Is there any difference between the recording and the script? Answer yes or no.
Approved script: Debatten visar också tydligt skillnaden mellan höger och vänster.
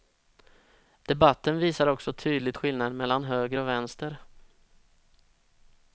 no